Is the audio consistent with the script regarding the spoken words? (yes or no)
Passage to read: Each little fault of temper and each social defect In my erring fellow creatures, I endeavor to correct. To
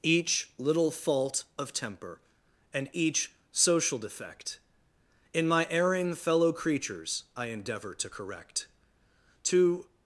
yes